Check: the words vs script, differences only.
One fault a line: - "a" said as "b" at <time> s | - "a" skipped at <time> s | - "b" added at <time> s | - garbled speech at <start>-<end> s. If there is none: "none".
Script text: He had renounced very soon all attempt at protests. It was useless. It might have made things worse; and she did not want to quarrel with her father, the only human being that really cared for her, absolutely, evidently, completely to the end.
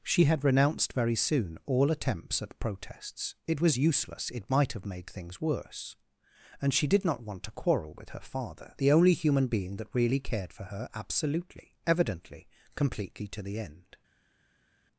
- "He" said as "She" at 0.0 s
- "attempt" said as "attempts" at 1.9 s